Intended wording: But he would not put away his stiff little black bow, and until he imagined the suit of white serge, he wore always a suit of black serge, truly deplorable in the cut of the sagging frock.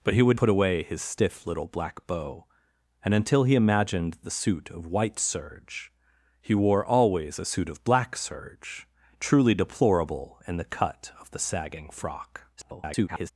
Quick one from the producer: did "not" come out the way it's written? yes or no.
no